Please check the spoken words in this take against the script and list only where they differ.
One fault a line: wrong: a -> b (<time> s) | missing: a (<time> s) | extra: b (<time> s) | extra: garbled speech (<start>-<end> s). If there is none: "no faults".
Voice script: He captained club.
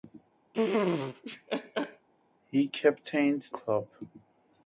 no faults